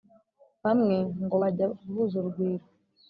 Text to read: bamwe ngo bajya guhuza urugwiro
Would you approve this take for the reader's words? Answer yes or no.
yes